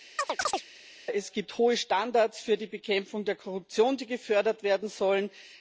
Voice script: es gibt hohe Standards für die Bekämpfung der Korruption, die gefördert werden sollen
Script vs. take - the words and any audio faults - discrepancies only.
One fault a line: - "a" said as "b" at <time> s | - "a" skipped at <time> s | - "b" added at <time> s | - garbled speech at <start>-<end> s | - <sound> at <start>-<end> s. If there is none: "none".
- chirp at 0.2-0.6 s